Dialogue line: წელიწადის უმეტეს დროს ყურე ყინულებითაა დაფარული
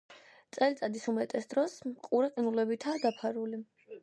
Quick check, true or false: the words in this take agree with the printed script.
true